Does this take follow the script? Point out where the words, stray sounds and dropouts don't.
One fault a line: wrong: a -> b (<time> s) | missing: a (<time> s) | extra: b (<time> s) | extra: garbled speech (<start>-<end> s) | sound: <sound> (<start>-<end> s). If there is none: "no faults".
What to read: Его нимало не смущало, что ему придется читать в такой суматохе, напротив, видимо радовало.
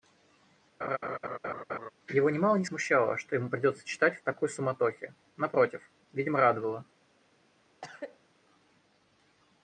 sound: laugh (0.8-1.9 s)
sound: cough (7.8-8.3 s)